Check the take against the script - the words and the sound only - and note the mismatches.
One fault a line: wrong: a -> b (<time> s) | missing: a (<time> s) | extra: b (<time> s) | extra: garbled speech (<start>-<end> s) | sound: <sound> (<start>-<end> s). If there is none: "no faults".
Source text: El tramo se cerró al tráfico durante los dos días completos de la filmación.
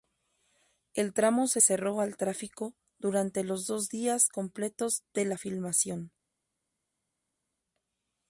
no faults